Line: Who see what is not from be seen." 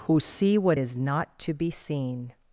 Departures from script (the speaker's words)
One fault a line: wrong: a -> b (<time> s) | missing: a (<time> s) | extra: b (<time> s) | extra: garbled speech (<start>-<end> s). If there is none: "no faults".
wrong: from -> to (1.4 s)